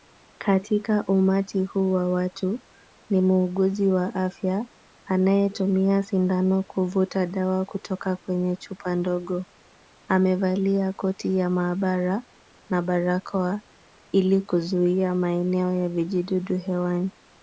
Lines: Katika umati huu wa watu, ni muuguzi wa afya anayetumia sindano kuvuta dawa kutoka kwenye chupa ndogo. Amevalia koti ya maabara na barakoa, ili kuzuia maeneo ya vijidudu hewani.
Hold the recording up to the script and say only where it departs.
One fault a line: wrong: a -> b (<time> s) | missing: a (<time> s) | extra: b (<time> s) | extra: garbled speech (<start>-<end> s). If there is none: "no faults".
no faults